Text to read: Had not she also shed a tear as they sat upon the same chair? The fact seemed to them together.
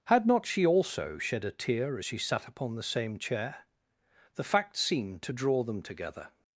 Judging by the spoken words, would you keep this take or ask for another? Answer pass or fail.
fail